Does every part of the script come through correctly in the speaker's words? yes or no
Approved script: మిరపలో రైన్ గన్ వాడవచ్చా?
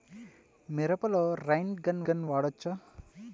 no